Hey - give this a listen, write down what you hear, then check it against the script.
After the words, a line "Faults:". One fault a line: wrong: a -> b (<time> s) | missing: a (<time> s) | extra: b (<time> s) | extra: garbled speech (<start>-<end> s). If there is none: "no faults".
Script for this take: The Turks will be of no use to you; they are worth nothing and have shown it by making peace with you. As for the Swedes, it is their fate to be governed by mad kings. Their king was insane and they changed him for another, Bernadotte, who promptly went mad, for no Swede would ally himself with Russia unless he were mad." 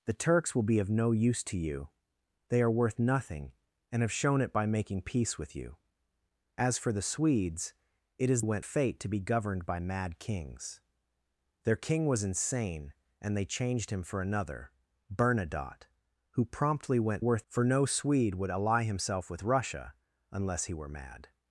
The Turks will be of no use to you; they are worth nothing and have shown it by making peace with you. As for the Swedes, it is went fate to be governed by mad kings. Their king was insane and they changed him for another, Bernadotte, who promptly went worth, for no Swede would ally himself with Russia unless he were mad."
Faults:
wrong: their -> went (8.4 s)
wrong: mad -> worth (17.2 s)